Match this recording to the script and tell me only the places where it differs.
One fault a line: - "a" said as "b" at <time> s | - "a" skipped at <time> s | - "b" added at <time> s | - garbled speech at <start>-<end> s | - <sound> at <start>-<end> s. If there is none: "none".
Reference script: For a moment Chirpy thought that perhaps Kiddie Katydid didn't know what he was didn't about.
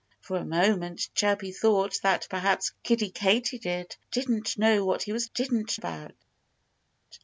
none